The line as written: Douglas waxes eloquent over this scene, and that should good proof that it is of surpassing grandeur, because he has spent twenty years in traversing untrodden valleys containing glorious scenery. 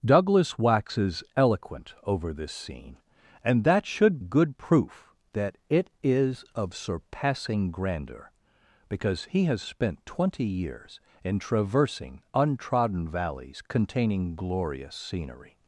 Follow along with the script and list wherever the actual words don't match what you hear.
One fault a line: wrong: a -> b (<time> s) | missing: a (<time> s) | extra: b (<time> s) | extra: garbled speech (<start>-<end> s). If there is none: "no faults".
no faults